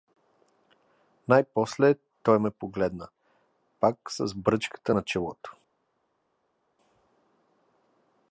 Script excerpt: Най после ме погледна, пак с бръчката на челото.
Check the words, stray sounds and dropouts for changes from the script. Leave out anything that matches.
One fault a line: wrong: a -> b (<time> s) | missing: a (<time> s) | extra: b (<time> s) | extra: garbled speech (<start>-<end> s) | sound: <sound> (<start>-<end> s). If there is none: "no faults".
extra: той (2.2 s)